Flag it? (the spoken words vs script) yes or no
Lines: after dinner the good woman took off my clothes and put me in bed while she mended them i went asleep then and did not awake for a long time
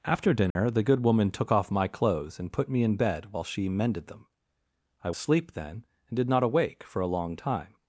yes